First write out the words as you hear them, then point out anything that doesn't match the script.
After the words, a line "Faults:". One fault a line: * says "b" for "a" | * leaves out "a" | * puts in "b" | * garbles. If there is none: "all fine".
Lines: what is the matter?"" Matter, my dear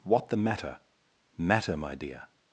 what the matter?"" Matter, my dear
Faults:
* leaves out "is"